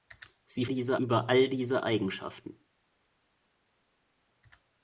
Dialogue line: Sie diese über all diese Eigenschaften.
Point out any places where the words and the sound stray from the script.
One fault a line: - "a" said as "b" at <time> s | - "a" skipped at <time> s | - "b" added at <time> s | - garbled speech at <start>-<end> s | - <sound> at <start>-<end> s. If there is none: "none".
none